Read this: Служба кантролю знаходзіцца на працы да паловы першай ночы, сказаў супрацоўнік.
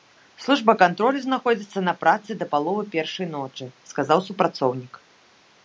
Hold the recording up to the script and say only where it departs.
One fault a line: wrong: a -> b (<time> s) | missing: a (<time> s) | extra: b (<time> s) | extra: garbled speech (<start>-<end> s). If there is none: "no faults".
no faults